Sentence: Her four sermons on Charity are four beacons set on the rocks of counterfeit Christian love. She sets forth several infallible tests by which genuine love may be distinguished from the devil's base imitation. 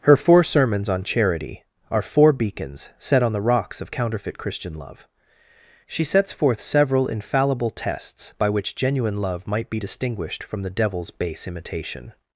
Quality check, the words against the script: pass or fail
fail